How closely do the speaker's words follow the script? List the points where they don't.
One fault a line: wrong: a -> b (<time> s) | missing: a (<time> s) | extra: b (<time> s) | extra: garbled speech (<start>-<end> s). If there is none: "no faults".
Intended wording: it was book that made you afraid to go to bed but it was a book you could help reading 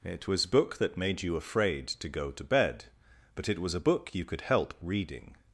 no faults